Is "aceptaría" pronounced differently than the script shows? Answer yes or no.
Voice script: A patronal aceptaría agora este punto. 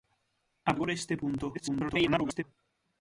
yes